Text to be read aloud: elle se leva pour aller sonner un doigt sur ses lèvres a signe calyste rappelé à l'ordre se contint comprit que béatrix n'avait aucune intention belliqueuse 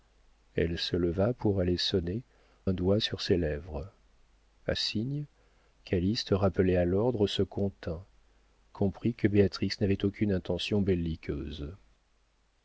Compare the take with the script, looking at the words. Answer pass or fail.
pass